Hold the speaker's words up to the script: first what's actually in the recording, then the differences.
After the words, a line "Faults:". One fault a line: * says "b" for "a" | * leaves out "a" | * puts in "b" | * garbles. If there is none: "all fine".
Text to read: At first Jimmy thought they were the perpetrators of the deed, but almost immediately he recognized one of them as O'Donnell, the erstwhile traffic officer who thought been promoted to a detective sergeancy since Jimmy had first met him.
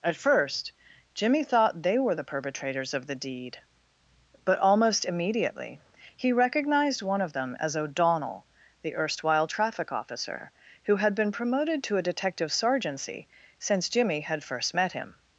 At first Jimmy thought they were the perpetrators of the deed, but almost immediately he recognized one of them as O'Donnell, the erstwhile traffic officer who had been promoted to a detective sergeancy since Jimmy had first met him.
Faults:
* says "had" for "thought"